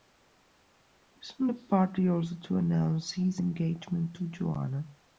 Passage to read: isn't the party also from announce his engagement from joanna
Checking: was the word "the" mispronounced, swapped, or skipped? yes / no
no